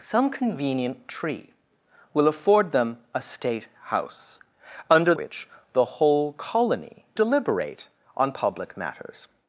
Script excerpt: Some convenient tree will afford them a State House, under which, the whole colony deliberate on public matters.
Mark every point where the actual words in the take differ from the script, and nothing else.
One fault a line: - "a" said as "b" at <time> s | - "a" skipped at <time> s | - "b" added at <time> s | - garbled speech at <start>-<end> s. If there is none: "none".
none